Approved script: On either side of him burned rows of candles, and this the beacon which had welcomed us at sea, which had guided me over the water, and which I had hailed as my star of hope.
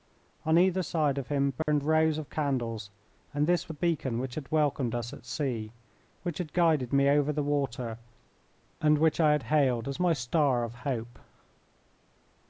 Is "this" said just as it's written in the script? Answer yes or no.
yes